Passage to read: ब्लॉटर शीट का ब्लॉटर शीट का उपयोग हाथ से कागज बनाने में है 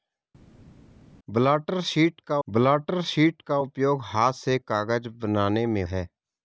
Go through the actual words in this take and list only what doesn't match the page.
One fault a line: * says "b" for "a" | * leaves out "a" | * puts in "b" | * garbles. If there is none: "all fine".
all fine